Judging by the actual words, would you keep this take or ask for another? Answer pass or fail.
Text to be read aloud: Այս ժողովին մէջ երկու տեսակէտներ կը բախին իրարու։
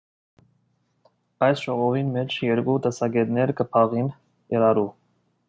pass